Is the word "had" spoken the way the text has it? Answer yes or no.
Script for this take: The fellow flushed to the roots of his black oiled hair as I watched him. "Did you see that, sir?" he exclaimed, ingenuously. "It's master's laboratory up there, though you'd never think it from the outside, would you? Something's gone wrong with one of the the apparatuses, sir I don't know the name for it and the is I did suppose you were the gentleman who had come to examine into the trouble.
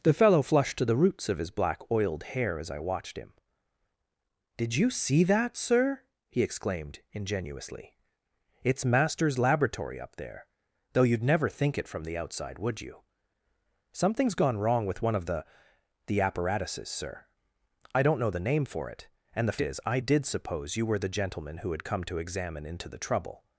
yes